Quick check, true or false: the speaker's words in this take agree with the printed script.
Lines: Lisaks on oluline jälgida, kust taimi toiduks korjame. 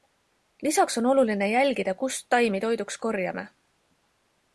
true